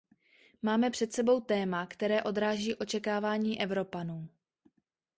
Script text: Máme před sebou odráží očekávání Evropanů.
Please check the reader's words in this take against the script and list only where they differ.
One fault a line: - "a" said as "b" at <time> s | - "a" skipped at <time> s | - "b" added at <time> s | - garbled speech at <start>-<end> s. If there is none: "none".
- "téma které" added at 1.4 s